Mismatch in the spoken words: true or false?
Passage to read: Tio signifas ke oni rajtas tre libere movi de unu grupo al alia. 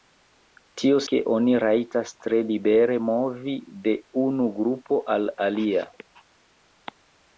true